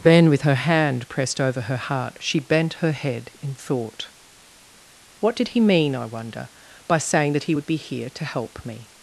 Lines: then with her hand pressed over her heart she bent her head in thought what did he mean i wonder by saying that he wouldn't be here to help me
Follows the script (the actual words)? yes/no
no